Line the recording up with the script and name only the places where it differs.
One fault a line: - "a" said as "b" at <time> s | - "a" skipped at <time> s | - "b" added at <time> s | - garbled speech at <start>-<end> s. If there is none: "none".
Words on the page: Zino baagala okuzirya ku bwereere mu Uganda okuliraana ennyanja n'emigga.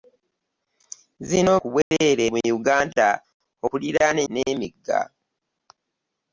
- "baagala okuzirya" skipped at 1.5 s
- "ennyanja" skipped at 4.2 s